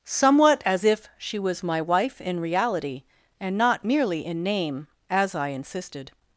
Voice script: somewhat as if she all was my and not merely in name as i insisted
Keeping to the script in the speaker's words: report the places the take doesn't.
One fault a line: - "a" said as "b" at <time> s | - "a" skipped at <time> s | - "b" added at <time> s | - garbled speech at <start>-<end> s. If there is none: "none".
- "all" skipped at 1.4 s
- "wife in reality" added at 1.8 s